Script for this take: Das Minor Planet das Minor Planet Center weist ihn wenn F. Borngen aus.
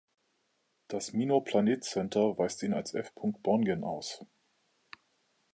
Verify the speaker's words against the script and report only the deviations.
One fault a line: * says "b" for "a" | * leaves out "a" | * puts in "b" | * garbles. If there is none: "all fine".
* leaves out "das Minor Planet"
* says "als" for "wenn"